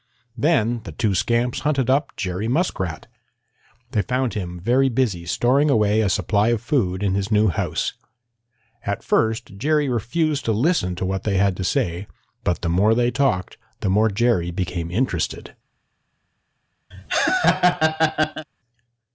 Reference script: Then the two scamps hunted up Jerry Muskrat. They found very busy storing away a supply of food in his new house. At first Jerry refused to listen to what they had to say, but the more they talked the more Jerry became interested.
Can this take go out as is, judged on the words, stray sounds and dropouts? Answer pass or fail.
fail